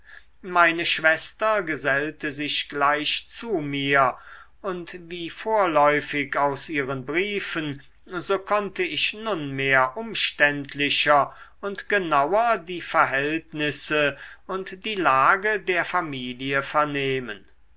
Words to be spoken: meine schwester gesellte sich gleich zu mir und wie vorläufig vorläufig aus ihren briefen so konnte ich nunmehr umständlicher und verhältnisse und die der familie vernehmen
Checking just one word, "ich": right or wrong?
right